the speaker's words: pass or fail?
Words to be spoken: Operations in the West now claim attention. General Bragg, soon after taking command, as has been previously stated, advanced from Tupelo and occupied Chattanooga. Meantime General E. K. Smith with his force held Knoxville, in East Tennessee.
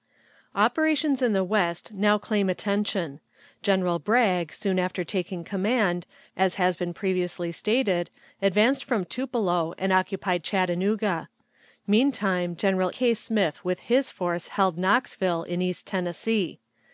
fail